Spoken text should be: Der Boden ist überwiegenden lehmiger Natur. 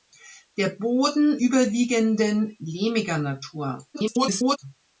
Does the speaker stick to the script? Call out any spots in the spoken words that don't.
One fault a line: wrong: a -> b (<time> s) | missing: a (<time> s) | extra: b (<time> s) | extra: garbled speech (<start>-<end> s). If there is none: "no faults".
missing: ist (1.4 s)
extra: garbled speech (3.9-4.6 s)